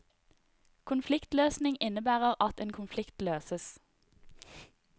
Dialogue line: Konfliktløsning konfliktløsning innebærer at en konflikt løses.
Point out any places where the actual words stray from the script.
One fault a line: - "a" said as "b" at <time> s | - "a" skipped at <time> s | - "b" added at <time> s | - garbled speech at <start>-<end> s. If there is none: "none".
- "konfliktløsning" skipped at 1.8 s